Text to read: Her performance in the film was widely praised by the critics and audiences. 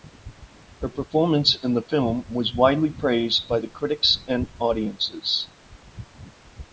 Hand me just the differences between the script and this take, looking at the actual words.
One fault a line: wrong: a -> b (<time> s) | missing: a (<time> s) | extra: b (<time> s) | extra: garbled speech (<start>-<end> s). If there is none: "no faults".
no faults